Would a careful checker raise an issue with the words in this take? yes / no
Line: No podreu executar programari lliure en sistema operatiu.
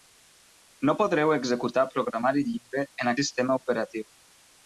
no